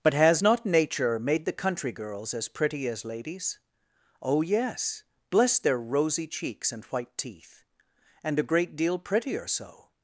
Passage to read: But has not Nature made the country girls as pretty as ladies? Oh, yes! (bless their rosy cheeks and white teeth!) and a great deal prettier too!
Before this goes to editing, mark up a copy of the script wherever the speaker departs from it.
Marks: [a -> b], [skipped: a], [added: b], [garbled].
But has not Nature made the country girls as pretty as ladies? Oh, yes! (bless their rosy cheeks and white teeth!) and a great deal prettier [too! -> so]